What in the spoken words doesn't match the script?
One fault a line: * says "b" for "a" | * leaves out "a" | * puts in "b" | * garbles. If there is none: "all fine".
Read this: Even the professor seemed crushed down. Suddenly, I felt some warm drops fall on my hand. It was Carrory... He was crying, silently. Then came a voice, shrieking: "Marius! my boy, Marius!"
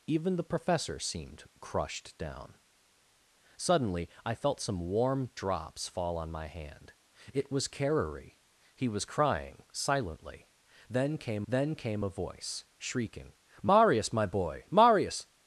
* puts in "then came"